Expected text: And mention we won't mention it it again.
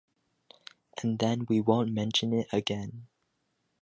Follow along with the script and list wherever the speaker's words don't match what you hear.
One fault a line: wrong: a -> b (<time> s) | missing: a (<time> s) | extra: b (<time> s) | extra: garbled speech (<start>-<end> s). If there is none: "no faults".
wrong: mention -> then (1.2 s)
missing: it (2.5 s)